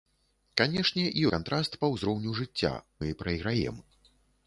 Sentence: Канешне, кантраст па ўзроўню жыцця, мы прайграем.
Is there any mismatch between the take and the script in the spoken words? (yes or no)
no